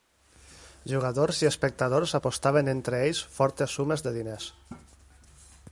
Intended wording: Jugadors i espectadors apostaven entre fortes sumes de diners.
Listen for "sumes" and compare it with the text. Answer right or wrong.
right